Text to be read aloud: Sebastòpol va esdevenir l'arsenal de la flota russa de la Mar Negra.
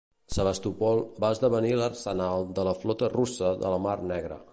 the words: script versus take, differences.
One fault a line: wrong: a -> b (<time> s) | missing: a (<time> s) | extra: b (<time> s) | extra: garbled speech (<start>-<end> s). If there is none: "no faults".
no faults